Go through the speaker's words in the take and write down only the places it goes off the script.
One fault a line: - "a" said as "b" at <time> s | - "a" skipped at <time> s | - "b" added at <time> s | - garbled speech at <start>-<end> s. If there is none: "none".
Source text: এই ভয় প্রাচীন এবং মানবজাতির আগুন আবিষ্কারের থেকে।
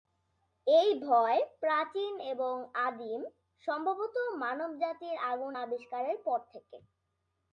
- "আদিম সম্ভবত" added at 2.8 s
- "পর" added at 6.2 s